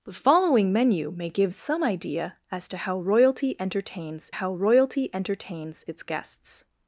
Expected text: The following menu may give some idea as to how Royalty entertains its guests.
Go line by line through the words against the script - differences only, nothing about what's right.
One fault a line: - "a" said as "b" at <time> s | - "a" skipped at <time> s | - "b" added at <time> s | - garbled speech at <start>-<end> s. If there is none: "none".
- "how Royalty entertains" added at 4.3 s